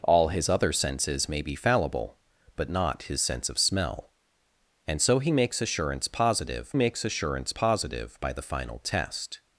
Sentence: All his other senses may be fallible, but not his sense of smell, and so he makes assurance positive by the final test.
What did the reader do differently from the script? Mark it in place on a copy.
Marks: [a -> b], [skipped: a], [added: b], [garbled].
All his other senses may be fallible, but not his sense of smell, and so he makes assurance positive [added: makes assurance positive] by the final test.